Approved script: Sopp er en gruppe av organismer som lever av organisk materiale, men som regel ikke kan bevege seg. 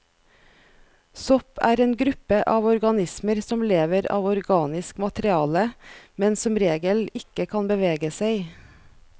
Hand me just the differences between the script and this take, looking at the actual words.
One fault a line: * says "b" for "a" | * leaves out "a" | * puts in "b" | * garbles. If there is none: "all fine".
all fine